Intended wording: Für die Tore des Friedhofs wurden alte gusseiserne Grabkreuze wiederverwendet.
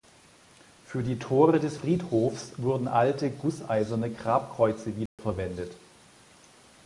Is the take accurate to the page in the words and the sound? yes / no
no